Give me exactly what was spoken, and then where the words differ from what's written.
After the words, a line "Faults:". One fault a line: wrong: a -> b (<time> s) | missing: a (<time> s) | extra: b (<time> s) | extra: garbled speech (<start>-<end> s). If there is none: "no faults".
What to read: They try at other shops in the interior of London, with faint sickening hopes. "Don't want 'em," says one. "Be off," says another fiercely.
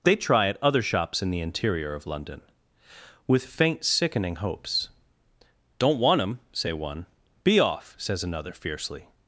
They try at other shops in the interior of London, with faint sickening hopes. "Don't want 'em," say one. "Be off," says another fiercely.
Faults:
wrong: says -> say (6.5 s)